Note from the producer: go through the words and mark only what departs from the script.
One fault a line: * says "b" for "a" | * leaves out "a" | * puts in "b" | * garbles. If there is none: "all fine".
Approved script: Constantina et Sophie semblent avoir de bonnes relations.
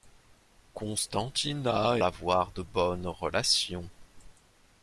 * leaves out "et Sophie semblent"